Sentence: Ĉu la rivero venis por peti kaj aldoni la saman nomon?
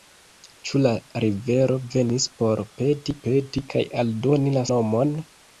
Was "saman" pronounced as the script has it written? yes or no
no